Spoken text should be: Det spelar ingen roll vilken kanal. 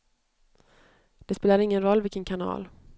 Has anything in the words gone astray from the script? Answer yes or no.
no